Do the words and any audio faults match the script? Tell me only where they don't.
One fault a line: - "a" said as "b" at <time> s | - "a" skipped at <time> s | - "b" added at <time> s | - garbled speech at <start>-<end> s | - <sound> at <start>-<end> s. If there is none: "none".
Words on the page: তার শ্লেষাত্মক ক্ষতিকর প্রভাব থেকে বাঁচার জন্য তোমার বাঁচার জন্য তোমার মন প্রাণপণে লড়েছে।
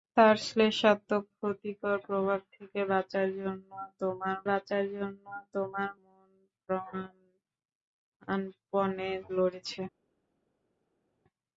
none